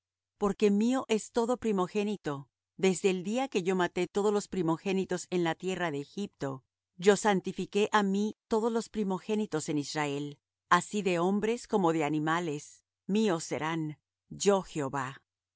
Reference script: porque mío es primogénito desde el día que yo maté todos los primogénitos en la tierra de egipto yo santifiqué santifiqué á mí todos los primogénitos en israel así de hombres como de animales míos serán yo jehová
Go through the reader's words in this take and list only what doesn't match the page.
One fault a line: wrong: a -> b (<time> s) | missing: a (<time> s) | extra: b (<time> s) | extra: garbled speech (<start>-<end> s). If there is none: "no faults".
extra: todo (1.3 s)
missing: santifiqué (7.9 s)